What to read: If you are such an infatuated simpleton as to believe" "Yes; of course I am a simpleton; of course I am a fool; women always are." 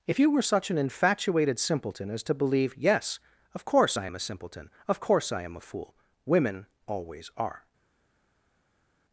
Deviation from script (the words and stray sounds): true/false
true